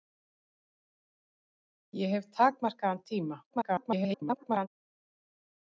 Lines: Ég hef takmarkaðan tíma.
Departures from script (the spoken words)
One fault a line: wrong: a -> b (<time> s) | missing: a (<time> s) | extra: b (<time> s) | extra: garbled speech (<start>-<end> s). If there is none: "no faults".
extra: garbled speech (3.5-4.7 s)